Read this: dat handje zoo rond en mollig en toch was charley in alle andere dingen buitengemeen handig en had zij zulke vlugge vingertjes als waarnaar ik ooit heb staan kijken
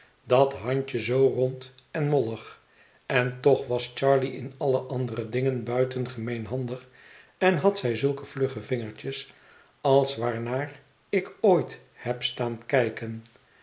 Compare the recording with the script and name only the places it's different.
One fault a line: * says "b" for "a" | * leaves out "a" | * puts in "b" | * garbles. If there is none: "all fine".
all fine